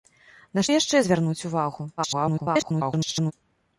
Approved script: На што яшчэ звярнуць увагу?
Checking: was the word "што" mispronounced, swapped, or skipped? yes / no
yes